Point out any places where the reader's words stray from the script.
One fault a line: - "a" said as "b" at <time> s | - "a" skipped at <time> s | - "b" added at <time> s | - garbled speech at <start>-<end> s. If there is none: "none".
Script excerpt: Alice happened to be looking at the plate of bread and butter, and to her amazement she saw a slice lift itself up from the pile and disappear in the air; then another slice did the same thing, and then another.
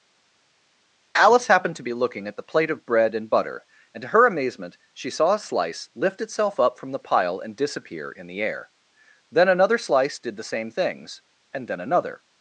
- "thing" said as "things" at 10.7 s